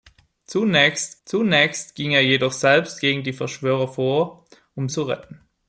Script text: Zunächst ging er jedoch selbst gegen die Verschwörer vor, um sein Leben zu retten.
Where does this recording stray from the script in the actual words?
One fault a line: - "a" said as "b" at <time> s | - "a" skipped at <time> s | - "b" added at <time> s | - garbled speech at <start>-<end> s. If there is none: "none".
- "zunächst" added at 1.2 s
- "sein Leben" skipped at 4.9 s